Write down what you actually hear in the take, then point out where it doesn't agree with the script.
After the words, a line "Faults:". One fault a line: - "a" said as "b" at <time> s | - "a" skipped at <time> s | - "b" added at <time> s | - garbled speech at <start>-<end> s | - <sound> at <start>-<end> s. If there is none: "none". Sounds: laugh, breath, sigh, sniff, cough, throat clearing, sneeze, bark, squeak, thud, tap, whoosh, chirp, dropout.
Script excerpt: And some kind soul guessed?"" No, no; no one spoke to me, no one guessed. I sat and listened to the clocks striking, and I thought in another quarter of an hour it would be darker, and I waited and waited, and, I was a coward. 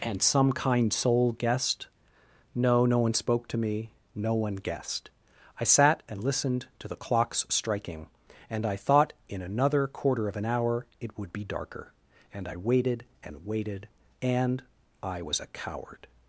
And some kind soul guessed?"" No, no; one spoke to me, no one guessed. I sat and listened to the clocks striking, and I thought in another quarter of an hour it would be darker, and I waited and waited, and, I was a coward.
Faults:
- "no" skipped at 3.0 s